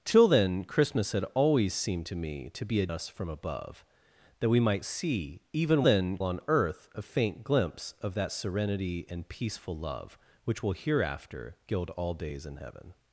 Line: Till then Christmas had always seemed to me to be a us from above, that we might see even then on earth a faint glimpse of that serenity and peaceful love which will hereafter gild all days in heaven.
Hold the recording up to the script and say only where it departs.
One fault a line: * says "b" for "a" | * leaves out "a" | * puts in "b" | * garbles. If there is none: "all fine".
all fine